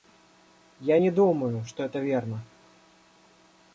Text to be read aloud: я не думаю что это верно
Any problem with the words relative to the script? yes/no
no